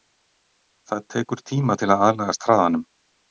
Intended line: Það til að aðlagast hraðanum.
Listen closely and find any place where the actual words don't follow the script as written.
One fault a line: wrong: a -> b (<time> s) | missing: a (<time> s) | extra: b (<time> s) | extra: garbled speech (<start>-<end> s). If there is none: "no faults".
extra: tekur tíma (1.1 s)